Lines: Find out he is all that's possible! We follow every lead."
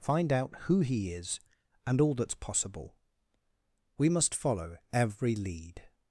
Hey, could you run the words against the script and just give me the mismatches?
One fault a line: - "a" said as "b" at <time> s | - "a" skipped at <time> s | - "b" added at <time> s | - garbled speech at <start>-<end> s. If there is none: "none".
- "who" added at 0.6 s
- "and" added at 1.9 s
- "must" added at 4.1 s